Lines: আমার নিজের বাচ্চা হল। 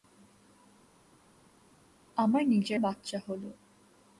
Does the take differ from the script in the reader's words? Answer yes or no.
no